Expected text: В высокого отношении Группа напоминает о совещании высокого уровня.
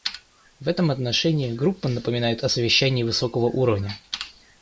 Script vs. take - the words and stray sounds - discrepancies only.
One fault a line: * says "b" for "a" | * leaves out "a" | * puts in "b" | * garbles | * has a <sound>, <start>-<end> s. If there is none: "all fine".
* says "этом" for "высокого"